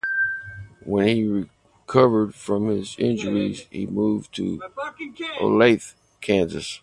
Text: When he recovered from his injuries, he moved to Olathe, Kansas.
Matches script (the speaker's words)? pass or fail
pass